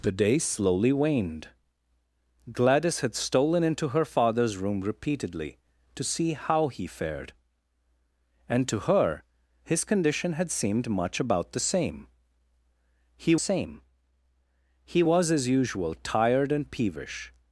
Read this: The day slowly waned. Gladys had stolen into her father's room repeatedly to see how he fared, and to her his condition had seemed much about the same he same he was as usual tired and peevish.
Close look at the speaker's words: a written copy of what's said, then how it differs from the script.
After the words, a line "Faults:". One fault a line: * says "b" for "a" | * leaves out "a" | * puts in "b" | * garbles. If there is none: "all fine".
The day slowly waned. Gladys had stolen into her father's room repeatedly to see how he fared, and to her his condition had seemed much about the same he same he was as usual tired and peevish.
Faults:
all fine